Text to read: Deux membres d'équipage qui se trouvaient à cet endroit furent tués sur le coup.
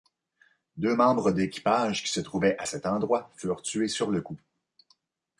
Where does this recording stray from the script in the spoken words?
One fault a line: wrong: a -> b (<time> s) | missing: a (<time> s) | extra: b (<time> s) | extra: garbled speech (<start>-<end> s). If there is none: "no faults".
no faults